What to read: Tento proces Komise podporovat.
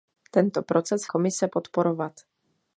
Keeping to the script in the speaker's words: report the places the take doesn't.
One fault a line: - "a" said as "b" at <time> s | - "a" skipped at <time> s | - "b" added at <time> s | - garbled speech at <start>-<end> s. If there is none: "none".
none